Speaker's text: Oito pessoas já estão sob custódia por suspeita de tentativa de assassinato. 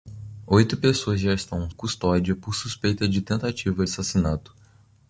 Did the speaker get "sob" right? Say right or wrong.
wrong